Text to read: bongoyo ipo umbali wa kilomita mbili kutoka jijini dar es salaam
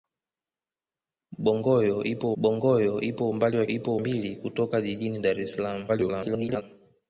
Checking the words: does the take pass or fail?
fail